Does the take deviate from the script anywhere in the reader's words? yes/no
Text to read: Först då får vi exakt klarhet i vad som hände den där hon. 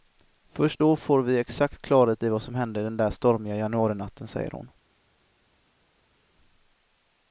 yes